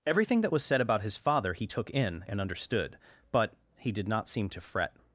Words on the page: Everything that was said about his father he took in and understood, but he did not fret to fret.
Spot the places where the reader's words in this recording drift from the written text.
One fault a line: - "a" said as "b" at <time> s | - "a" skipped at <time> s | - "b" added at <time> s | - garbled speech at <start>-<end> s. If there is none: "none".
- "fret" said as "seem" at 4.3 s